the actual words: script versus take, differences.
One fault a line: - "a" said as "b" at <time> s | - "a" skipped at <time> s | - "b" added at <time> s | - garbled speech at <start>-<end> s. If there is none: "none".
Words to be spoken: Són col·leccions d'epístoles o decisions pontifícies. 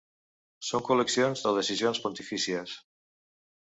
- "d'epístoles" skipped at 1.4 s